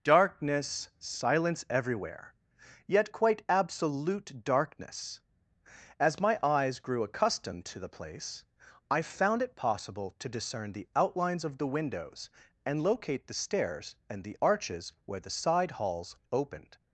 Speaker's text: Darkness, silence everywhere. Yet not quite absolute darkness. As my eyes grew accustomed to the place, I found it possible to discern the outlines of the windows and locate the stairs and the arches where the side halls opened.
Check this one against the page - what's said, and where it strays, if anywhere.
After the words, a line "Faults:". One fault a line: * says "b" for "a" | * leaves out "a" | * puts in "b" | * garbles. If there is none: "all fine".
Darkness, silence everywhere. Yet quite absolute darkness. As my eyes grew accustomed to the place, I found it possible to discern the outlines of the windows and locate the stairs and the arches where the side halls opened.
Faults:
* leaves out "not"